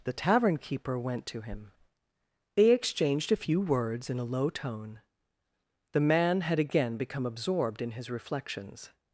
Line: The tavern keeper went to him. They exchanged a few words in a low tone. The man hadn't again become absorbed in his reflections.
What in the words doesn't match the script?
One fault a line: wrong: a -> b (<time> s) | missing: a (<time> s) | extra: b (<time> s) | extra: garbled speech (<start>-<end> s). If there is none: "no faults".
wrong: hadn't -> had (6.4 s)